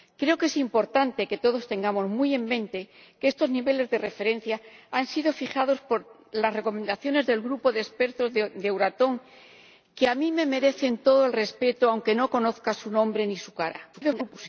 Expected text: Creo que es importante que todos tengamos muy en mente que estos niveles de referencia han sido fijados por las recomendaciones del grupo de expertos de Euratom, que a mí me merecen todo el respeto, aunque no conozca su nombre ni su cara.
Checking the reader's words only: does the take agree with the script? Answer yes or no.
no